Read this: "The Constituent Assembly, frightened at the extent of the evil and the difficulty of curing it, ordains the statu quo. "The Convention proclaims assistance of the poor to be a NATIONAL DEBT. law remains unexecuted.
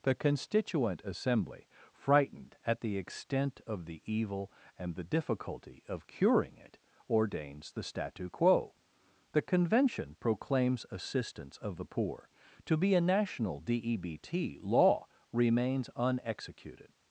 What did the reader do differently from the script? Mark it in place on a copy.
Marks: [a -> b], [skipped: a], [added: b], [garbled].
"The Constituent Assembly, frightened at the extent of the evil and the difficulty of curing it, ordains the statu quo. "The Convention proclaims assistance of the poor to be a NATIONAL DEBT. law remains unexecuted.